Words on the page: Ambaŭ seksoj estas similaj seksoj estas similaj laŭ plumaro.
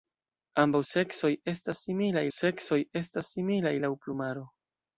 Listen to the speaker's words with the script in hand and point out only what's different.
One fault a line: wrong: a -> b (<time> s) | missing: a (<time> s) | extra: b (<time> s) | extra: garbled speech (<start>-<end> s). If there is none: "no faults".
no faults